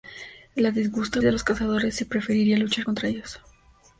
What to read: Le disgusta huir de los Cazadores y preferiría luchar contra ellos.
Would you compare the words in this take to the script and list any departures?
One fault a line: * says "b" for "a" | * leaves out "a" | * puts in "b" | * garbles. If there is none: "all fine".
* leaves out "huir"